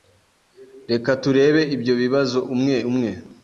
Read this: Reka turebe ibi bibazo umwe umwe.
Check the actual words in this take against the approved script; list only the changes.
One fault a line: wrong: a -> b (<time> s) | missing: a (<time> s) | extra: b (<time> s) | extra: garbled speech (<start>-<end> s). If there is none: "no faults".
wrong: ibi -> ibyo (1.8 s)